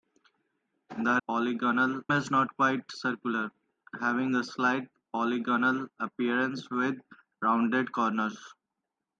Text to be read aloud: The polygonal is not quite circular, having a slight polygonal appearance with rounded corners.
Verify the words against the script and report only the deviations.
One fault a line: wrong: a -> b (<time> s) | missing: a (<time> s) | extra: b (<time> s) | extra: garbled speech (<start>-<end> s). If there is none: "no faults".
no faults